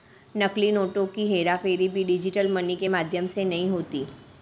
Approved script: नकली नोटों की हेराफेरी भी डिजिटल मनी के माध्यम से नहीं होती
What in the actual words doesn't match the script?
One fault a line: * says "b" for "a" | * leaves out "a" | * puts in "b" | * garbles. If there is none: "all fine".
all fine